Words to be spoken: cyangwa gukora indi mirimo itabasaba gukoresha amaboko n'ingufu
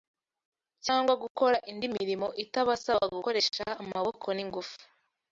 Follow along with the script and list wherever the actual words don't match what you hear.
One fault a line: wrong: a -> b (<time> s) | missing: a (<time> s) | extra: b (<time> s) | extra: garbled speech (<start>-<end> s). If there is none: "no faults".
no faults